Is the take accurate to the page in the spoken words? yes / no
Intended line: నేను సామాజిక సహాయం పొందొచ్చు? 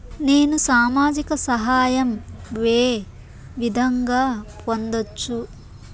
no